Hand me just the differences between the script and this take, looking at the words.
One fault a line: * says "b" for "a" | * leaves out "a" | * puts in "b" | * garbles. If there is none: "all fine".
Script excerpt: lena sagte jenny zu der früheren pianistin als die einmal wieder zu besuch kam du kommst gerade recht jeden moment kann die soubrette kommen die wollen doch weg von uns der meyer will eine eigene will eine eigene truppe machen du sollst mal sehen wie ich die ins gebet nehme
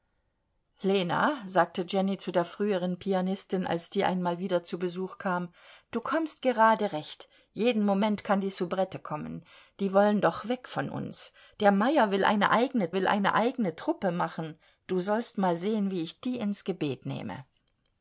all fine